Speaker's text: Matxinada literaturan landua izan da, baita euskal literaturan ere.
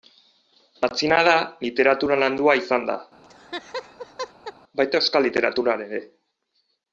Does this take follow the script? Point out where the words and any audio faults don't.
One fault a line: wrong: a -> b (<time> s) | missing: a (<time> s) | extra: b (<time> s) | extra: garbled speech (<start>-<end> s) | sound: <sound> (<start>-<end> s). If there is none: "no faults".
sound: laugh (3.2-4.5 s)